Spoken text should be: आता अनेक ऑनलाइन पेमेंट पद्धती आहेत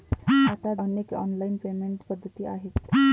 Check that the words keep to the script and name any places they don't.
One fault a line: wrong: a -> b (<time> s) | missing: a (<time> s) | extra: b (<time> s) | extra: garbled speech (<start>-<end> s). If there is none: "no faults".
no faults